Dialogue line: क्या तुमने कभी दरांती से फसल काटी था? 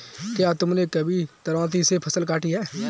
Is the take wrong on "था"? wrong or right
wrong